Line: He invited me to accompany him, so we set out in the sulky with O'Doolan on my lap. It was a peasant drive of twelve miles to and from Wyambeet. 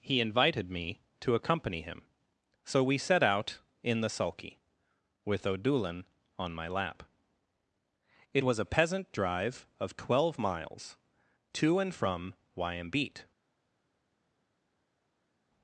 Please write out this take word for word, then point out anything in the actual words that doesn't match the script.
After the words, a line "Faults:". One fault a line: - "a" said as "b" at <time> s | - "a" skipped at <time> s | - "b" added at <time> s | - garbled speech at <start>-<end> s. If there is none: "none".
He invited me to accompany him, so we set out in the sulky with O'Doolan on my lap. It was a peasant drive of twelve miles to and from Wyambeet.
Faults:
none